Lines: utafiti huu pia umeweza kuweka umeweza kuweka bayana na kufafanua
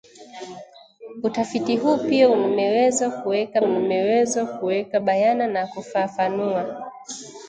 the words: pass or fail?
pass